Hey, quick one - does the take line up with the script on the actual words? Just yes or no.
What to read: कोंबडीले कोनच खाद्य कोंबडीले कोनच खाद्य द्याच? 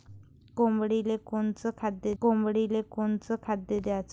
yes